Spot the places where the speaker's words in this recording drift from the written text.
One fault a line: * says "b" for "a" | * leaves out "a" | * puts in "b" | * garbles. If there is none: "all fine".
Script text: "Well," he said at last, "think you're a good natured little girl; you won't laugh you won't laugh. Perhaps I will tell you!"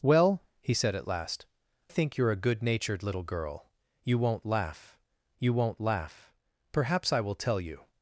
all fine